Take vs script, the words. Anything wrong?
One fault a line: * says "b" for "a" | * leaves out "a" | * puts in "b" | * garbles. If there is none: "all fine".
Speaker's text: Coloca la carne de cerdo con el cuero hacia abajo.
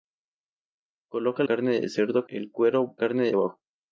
* leaves out "la"
* leaves out "con"
* says "carne" for "hacia"